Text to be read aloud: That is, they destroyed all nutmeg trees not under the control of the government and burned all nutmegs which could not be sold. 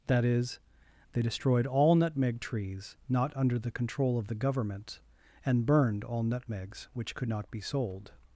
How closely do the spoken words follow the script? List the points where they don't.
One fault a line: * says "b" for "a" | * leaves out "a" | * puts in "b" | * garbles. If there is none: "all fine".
all fine